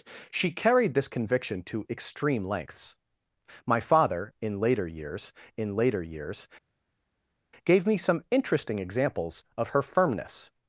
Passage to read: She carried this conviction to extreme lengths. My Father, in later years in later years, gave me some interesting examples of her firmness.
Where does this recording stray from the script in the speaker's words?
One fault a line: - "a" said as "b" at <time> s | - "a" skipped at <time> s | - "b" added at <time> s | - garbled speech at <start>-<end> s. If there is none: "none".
none